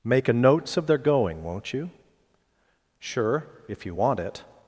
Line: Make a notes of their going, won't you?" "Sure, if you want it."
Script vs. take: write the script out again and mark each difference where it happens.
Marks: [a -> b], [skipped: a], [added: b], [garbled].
Make a notes of their going, won't you?" "Sure, if you want it."